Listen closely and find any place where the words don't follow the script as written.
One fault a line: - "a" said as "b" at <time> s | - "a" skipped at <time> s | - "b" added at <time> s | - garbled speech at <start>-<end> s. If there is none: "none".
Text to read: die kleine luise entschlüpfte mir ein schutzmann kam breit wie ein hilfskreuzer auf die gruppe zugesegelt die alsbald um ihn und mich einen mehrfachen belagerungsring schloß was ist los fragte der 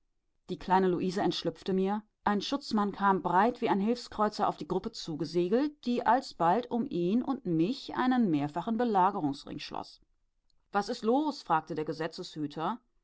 none